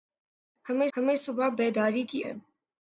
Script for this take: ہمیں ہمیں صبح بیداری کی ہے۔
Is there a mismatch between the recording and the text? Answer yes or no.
no